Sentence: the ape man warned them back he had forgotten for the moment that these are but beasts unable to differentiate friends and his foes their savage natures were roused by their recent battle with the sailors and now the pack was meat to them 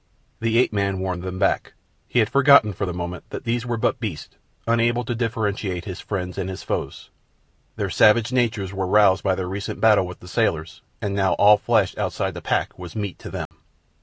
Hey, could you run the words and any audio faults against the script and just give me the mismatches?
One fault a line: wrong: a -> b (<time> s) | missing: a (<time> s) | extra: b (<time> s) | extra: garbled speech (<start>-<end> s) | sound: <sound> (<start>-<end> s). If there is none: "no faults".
wrong: are -> were (3.7 s)
extra: his (5.8 s)
extra: all flesh outside (11.3 s)
sound: dropout (13.5-13.5 s)